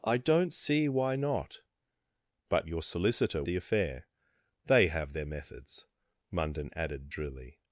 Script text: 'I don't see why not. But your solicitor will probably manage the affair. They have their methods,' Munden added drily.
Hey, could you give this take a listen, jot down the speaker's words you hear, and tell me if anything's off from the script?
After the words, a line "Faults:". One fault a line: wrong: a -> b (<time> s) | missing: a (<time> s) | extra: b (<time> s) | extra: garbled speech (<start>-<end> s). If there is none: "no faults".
'I don't see why not. But your solicitor the affair. They have their methods,' Munden added drily.
Faults:
missing: will probably manage (3.4 s)